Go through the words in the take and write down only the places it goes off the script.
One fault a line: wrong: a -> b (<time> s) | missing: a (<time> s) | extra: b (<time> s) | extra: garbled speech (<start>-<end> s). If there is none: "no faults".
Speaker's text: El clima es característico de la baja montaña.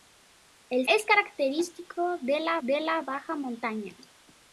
missing: clima (0.9 s)
extra: de la (2.6 s)